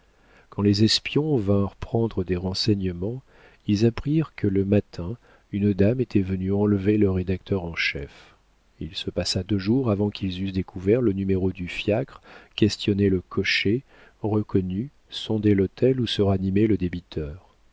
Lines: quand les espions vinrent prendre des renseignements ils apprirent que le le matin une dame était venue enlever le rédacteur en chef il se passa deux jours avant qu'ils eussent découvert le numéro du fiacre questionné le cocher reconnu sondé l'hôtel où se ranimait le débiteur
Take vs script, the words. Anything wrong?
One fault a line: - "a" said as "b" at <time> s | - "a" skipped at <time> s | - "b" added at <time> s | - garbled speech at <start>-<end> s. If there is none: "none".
- "le" skipped at 4.7 s